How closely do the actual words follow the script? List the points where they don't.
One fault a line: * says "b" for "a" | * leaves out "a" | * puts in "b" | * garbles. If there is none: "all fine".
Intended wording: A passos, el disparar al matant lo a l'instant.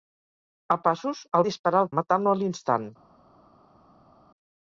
all fine